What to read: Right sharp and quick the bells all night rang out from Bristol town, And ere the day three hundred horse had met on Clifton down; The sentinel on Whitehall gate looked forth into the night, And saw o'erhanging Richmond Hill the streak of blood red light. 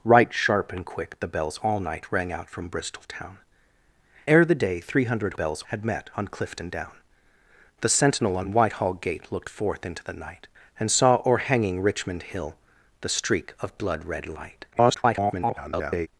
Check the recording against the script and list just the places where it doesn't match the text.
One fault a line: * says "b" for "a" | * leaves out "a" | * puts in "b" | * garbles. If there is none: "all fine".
* leaves out "And"
* says "bells" for "horse"
* garbles